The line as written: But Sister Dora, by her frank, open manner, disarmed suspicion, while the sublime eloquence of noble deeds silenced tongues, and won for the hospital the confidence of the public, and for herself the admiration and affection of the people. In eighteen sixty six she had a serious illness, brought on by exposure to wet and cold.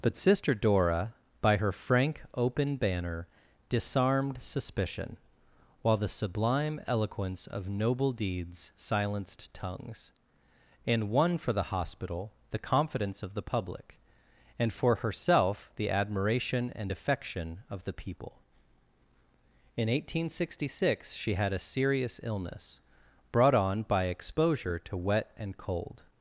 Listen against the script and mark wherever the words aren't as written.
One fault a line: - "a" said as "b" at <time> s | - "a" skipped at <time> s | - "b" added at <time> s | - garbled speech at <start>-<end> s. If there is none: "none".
- "manner" said as "banner" at 2.8 s